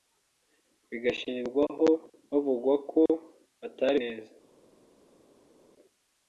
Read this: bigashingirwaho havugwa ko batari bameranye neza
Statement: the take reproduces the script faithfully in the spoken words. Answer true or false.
false